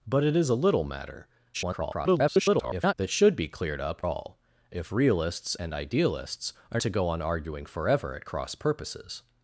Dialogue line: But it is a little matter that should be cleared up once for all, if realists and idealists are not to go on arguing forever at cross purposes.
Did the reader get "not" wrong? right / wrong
wrong